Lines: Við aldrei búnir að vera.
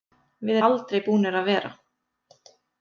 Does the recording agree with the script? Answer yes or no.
yes